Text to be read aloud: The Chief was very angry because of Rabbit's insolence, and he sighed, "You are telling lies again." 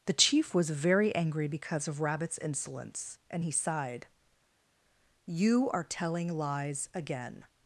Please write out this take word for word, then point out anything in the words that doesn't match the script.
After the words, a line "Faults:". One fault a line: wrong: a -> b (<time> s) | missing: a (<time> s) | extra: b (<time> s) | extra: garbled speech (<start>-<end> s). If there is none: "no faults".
The Chief was very angry because of Rabbit's insolence, and he sighed, "You are telling lies again."
Faults:
no faults